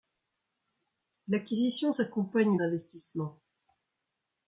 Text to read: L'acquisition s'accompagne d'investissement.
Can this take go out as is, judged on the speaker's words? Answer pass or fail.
pass